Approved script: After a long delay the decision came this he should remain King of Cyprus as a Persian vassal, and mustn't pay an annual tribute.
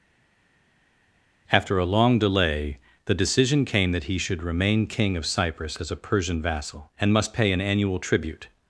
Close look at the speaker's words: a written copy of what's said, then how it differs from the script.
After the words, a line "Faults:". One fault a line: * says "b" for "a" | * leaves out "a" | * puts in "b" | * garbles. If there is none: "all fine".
After a long delay the decision came that he should remain King of Cyprus as a Persian vassal, and must pay an annual tribute.
Faults:
* says "that" for "this"
* says "must" for "mustn't"